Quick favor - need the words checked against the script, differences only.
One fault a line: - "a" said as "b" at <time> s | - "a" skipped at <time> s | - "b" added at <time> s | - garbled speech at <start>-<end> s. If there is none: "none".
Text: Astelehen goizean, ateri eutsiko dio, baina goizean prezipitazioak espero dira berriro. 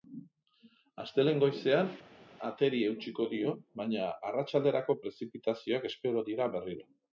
- "goizean" said as "arratsalderako" at 4.3 s